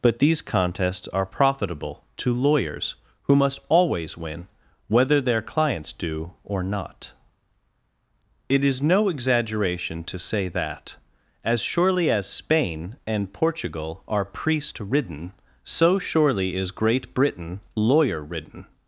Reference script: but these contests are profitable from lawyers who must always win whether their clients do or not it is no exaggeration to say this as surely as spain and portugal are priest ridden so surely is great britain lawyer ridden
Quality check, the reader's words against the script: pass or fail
fail